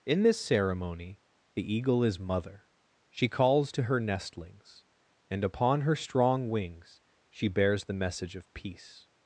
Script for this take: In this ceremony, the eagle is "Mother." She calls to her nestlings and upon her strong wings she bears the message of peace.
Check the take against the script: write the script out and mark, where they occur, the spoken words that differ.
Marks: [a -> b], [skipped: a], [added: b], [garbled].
In this ceremony, the eagle is "Mother." She calls to her nestlings and upon her strong wings she bears the message of peace.